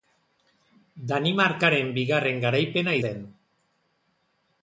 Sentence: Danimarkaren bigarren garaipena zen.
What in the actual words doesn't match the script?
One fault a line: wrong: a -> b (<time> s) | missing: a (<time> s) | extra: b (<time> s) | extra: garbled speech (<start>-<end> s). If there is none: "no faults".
no faults